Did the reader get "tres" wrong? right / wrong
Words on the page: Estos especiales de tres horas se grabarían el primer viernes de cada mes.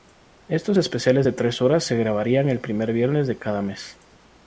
right